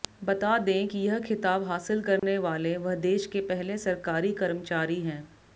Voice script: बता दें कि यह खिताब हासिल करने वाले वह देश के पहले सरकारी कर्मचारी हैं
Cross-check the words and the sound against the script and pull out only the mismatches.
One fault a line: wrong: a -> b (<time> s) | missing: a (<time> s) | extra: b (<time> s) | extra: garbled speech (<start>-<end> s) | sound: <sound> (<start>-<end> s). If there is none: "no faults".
sound: dropout (2.2-2.2 s)